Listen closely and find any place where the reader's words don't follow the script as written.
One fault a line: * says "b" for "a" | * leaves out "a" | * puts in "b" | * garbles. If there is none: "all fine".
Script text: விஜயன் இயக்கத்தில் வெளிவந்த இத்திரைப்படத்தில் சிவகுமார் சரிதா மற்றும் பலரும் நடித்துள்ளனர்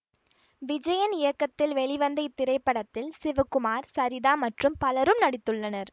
all fine